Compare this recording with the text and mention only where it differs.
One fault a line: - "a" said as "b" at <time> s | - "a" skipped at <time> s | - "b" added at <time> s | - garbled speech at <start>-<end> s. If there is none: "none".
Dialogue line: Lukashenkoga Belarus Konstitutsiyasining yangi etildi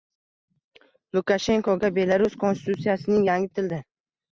none